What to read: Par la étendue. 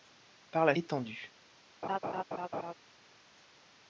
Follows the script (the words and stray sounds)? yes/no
no